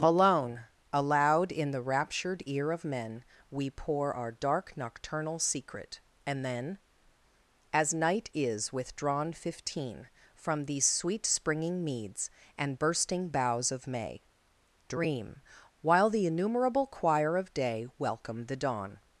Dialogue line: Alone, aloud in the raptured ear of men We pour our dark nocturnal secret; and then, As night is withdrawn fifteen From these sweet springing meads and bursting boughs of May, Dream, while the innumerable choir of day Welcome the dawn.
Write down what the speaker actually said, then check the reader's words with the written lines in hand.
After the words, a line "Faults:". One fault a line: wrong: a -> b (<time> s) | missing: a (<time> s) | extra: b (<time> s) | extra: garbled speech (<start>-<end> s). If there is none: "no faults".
Alone, aloud in the raptured ear of men We pour our dark nocturnal secret; and then, As night is withdrawn fifteen From these sweet springing meads and bursting boughs of May, Dream, while the innumerable choir of day Welcome the dawn.
Faults:
no faults